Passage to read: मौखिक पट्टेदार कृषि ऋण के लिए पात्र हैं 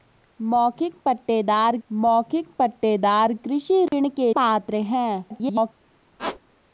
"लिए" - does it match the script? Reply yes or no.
no